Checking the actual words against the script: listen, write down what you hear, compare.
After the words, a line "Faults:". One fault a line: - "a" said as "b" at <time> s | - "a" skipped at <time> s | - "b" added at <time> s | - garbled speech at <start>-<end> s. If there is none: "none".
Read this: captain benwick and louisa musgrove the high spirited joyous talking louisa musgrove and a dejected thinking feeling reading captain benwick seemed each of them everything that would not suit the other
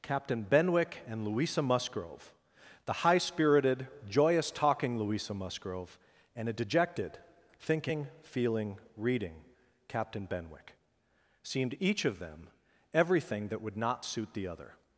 captain benwick and louisa musgrove the high spirited joyous talking louisa musgrove and a dejected thinking feeling reading captain benwick seemed each of them everything that would not suit the other
Faults:
none